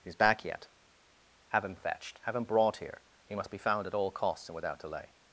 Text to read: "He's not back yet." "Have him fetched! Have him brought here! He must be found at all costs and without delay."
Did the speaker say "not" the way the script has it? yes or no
no